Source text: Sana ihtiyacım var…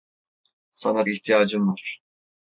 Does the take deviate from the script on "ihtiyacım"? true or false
false